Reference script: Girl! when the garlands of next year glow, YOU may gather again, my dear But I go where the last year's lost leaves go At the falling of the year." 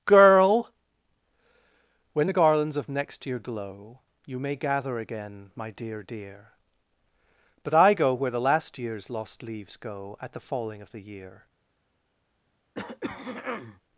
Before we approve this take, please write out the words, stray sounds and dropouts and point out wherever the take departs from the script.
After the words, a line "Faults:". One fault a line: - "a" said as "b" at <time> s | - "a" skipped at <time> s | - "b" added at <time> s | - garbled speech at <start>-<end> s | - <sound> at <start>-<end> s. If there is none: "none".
Girl! when the garlands of next year glow, YOU may gather again, my dear dear But I go where the last year's lost leaves go At the falling of the year."
Faults:
- "dear" added at 6.0 s
- throat clearing at 12.7-13.8 s